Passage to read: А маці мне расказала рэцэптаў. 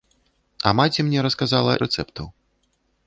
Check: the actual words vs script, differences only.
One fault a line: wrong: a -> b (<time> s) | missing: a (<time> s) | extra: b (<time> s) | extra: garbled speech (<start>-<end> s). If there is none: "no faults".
no faults